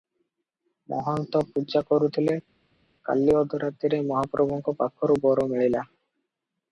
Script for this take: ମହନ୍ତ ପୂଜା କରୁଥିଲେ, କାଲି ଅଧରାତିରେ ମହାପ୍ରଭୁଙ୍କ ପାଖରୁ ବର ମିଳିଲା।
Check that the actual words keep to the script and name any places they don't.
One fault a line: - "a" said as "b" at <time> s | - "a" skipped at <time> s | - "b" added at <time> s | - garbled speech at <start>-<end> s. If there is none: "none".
none